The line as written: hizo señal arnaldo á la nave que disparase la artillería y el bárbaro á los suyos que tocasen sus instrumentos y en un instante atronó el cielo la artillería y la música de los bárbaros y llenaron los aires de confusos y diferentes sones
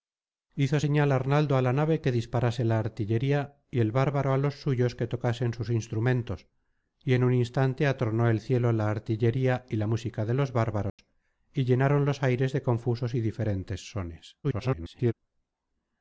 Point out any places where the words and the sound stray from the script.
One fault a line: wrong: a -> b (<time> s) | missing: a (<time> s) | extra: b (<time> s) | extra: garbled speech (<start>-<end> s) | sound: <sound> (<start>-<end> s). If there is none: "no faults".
sound: dropout (10.9-11.0 s)
extra: garbled speech (14.4-15.1 s)